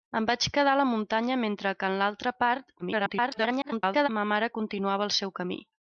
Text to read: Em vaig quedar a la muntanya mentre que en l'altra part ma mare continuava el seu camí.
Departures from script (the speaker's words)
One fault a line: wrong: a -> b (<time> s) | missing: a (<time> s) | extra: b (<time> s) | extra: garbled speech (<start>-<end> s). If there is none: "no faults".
extra: garbled speech (2.8-4.1 s)